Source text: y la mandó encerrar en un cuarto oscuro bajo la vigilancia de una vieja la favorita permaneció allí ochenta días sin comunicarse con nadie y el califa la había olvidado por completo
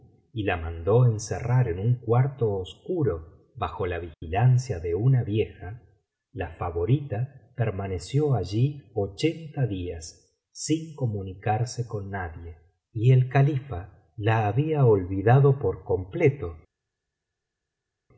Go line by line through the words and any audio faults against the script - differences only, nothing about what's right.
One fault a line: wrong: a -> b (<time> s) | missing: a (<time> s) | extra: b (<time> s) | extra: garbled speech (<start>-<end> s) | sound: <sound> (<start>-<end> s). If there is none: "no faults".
no faults